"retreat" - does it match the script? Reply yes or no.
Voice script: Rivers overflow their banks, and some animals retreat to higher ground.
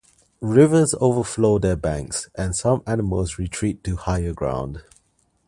yes